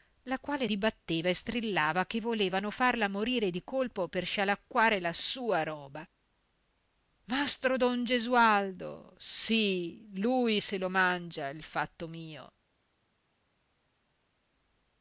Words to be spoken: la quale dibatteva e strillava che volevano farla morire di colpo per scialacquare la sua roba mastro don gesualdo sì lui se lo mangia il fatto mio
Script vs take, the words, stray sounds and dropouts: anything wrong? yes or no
no